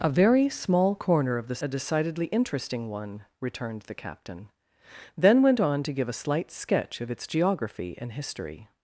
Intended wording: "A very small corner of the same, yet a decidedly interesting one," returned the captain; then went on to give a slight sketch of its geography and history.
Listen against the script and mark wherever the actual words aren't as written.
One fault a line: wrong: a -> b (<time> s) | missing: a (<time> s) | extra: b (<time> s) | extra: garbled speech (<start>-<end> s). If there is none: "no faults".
missing: same yet (1.6 s)